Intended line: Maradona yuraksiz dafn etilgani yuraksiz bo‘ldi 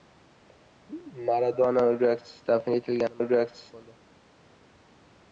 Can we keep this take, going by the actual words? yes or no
yes